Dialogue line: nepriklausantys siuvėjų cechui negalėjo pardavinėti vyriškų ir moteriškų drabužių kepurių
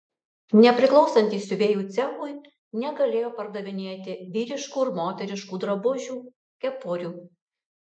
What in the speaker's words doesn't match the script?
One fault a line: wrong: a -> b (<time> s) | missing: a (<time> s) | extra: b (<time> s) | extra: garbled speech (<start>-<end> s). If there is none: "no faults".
no faults